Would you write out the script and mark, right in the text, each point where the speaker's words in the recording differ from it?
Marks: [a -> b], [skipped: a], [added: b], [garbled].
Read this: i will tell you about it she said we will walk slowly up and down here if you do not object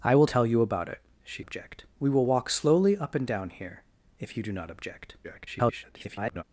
i will tell you about it she [said -> object] we will walk slowly up and down here if you do not object [garbled]